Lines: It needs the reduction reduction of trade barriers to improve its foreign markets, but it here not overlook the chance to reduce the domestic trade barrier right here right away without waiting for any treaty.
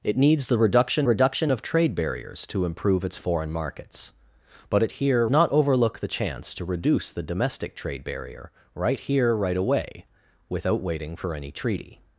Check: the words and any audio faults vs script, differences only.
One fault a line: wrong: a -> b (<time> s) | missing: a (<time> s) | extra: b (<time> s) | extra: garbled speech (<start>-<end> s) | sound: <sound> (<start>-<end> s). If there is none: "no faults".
no faults